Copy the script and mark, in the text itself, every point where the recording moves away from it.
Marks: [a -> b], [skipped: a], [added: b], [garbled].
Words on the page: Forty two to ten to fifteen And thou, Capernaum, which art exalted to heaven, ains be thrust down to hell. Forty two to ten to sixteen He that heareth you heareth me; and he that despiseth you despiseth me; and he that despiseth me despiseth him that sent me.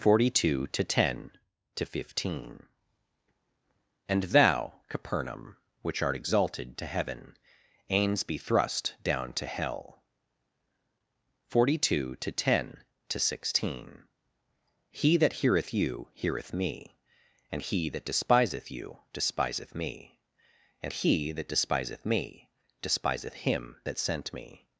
Forty two to ten to fifteen And thou, Capernaum, which art exalted to heaven, ains be thrust down to hell. Forty two to ten to sixteen He that heareth you heareth me; and he that despiseth you despiseth me; and he that despiseth me despiseth him that sent me.